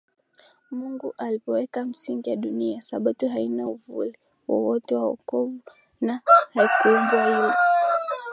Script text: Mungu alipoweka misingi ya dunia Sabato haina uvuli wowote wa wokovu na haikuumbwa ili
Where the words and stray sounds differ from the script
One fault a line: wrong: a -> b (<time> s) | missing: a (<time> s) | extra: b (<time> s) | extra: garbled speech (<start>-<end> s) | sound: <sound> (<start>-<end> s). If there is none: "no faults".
no faults